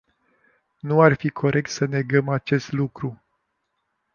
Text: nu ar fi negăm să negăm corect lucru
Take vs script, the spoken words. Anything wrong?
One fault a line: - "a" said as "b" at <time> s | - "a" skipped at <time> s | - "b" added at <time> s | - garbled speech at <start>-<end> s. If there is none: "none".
- "negăm" said as "corect" at 1.3 s
- "corect" said as "acest" at 2.3 s